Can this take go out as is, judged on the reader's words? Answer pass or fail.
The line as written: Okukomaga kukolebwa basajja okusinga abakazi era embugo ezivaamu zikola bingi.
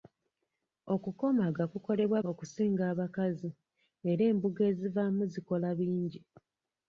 fail